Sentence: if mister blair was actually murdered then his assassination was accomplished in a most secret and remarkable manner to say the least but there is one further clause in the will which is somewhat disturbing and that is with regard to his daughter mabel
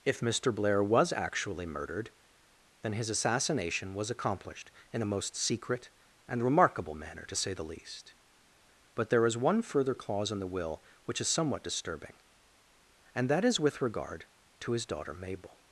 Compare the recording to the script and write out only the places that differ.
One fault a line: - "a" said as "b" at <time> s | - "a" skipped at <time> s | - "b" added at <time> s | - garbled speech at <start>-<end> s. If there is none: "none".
none